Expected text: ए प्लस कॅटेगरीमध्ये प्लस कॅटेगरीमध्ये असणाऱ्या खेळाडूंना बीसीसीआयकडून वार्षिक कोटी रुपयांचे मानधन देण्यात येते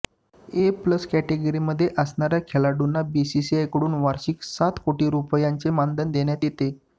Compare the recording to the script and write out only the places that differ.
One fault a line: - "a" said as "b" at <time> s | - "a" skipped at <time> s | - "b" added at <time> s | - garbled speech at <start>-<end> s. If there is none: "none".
- "प्लस कॅटेगरीमध्ये" skipped at 1.9 s
- "सात" added at 4.4 s